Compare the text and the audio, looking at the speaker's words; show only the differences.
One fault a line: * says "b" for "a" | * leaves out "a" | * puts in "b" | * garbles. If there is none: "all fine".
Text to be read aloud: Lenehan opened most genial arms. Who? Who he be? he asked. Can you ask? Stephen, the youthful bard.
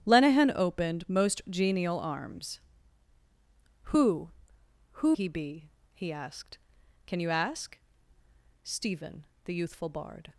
all fine